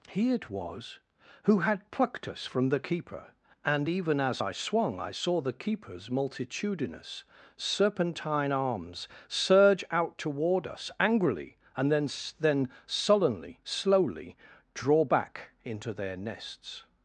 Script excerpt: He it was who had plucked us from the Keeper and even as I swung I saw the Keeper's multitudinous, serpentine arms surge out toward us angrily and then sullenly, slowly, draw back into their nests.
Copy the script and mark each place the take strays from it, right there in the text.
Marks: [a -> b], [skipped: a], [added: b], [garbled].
He it was who had plucked us from the Keeper and even as I swung I saw the Keeper's multitudinous, serpentine arms surge out toward us angrily and then [added: then] sullenly, slowly, draw back into their nests.